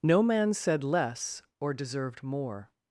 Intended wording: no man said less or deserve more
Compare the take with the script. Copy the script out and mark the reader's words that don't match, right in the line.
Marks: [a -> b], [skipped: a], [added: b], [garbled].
no man said less or [deserve -> deserved] more